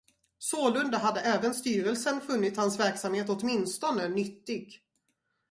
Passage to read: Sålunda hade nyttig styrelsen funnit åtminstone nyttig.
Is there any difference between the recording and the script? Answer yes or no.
yes